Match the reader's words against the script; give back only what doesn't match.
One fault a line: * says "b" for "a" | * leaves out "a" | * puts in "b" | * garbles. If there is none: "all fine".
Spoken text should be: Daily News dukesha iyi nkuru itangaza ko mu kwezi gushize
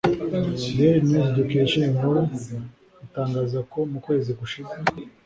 all fine